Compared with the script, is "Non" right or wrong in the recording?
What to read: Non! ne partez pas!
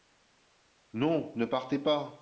right